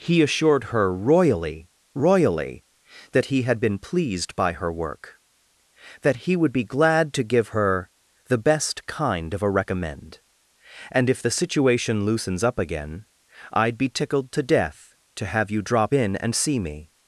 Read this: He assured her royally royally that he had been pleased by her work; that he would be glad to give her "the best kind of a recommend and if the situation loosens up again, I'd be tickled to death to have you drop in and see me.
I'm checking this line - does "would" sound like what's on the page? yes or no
yes